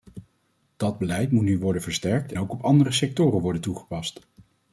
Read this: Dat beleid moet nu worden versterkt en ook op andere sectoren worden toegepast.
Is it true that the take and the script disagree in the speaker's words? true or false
true